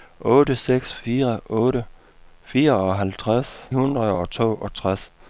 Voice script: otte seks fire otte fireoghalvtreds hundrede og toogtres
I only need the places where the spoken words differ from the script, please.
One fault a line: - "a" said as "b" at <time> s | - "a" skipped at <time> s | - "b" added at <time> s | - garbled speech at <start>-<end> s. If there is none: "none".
none